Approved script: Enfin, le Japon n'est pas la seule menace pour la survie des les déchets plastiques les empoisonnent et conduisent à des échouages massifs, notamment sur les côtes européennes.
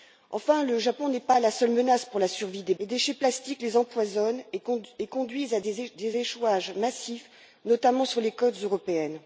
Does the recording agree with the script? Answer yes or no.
yes